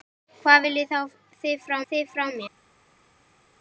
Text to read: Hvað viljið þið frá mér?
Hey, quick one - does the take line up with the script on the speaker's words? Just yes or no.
no